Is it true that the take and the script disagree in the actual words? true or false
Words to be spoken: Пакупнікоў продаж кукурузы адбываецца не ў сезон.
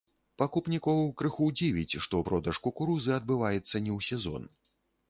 true